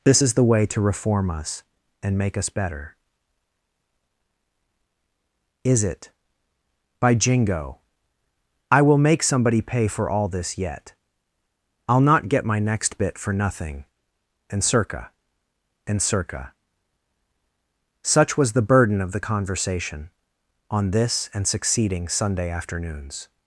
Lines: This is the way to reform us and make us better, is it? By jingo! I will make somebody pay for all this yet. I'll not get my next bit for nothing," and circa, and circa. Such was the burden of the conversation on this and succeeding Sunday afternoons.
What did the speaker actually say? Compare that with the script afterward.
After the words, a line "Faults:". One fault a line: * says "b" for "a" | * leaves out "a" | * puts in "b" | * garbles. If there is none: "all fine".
This is the way to reform us and make us better, is it? By jingo! I will make somebody pay for all this yet. I'll not get my next bit for nothing," and circa, and circa. Such was the burden of the conversation on this and succeeding Sunday afternoons.
Faults:
all fine